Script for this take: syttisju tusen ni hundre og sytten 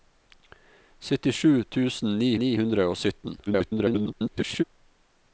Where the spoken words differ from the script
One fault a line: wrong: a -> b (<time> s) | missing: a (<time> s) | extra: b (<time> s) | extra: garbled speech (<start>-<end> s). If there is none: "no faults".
extra: ni (2.4 s)
extra: garbled speech (3.5-4.6 s)